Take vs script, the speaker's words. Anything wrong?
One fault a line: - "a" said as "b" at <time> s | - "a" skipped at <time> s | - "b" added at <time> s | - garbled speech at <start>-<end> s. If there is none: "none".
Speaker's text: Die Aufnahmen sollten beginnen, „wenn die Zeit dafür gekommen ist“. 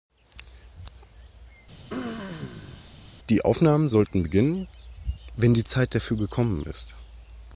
none